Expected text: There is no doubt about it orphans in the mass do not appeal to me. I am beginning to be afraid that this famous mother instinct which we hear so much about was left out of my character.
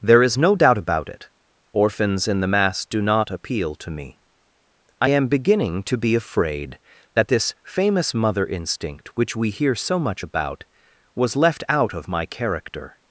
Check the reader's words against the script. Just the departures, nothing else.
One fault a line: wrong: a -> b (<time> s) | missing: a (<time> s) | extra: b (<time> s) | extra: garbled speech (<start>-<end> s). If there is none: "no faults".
no faults